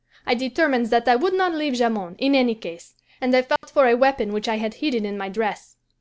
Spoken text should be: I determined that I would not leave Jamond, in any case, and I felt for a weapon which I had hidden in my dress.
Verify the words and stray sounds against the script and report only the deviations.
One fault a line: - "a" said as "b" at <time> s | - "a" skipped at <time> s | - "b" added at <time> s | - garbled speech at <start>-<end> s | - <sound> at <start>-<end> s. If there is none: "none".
- dropout at 3.6-3.6 s